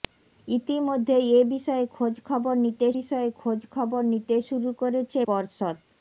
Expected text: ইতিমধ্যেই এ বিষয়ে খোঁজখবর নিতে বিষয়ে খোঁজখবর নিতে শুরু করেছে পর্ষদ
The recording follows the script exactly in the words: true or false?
true